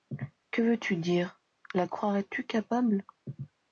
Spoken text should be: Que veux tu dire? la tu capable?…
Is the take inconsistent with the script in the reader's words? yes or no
yes